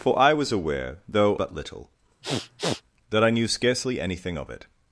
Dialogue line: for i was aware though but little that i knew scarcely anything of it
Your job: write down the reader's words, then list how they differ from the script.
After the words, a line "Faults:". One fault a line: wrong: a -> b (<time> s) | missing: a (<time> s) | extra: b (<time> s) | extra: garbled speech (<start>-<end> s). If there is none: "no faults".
for i was aware though but little that i knew scarcely anything of it
Faults:
no faults